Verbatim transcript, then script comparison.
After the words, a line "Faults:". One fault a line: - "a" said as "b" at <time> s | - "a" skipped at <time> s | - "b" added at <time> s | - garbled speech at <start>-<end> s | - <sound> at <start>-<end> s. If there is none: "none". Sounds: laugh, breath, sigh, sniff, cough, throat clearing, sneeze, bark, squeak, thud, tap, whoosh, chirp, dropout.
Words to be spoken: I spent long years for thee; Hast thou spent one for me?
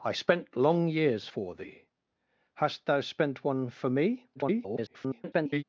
I spent long years for thee; Hast thou spent one for me? [garbled]
Faults:
- garbled speech at 4.3-5.6 s